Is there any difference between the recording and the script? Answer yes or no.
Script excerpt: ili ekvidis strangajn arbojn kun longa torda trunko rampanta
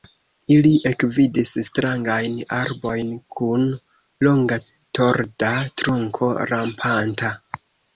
no